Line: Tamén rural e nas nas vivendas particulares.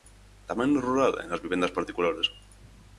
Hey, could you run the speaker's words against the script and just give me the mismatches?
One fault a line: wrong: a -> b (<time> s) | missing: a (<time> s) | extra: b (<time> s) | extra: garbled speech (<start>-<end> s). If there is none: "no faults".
extra: no (0.7 s)
missing: nas (1.4 s)